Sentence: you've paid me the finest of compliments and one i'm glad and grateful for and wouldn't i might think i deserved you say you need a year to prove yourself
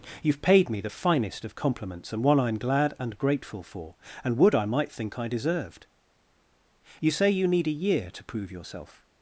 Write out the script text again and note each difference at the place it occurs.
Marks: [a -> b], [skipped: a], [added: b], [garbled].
you've paid me the finest of compliments and one i'm glad and grateful for and [wouldn't -> would] i might think i deserved you say you need a year to prove yourself